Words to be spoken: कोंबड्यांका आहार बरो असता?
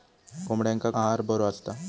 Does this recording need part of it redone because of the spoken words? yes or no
no